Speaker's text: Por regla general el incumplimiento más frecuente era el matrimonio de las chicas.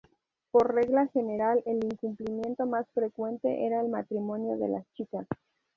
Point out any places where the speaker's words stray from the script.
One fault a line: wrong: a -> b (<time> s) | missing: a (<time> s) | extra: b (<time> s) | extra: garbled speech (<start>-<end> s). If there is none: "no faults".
no faults